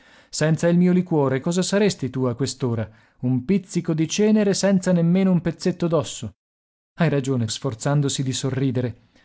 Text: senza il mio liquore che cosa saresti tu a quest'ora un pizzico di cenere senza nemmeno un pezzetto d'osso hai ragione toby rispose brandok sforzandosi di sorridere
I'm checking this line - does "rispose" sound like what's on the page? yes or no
no